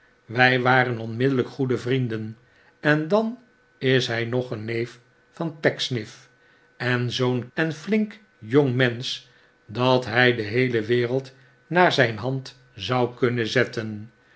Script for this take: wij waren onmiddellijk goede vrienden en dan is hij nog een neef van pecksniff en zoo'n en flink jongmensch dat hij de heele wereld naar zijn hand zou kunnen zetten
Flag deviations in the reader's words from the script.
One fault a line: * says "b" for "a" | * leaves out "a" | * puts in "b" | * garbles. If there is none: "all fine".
all fine